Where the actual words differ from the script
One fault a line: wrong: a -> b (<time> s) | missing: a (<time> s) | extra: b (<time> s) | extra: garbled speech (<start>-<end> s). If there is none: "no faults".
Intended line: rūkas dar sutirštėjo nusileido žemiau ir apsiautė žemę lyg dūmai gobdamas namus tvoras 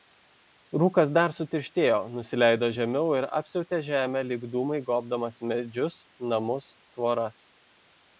extra: medžius (5.5 s)